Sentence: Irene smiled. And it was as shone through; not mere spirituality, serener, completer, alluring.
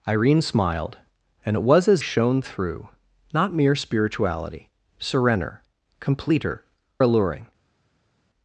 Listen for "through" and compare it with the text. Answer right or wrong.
right